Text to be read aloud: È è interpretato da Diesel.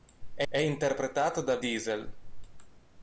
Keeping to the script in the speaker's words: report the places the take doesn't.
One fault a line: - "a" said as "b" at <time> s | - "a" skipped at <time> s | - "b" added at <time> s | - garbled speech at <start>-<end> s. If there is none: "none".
none